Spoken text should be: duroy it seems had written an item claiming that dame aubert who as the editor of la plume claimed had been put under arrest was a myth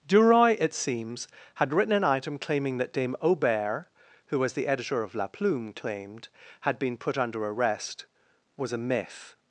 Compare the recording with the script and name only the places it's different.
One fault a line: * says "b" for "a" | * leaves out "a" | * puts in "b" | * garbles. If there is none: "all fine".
all fine